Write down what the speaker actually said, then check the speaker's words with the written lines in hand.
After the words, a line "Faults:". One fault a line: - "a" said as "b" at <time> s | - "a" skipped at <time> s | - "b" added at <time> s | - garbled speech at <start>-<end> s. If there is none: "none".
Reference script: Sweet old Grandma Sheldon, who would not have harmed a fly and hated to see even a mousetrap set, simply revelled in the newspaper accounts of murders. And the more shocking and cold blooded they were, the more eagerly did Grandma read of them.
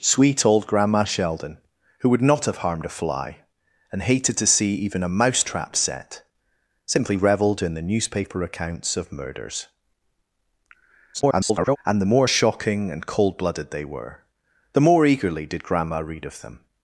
Sweet old Grandma Sheldon, who would not have harmed a fly and hated to see even a mousetrap set, simply revelled in the newspaper accounts of murders. [garbled] And the more shocking and cold blooded they were, the more eagerly did Grandma read of them.
Faults:
- garbled speech at 11.1-11.8 s